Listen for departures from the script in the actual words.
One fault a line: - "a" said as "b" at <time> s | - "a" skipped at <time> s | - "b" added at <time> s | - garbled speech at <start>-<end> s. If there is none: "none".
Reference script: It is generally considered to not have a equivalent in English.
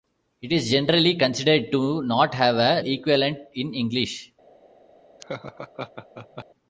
none